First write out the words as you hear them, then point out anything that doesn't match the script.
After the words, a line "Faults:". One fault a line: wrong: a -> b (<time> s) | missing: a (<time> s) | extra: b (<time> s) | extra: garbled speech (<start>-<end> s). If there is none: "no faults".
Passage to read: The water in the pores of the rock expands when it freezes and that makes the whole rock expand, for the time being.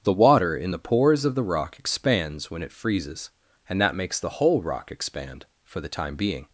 The water in the pores of the rock expands when it freezes and that makes the whole rock expand, for the time being.
Faults:
no faults